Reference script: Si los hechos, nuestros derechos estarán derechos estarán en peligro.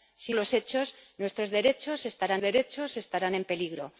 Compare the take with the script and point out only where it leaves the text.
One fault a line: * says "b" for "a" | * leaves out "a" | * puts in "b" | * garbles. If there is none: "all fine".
all fine